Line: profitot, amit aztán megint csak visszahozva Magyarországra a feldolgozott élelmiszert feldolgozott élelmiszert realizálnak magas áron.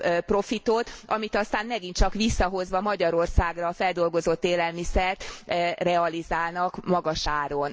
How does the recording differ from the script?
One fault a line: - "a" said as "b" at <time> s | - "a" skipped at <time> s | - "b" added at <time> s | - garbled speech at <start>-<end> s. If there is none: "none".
- "feldolgozott élelmiszert" skipped at 5.2 s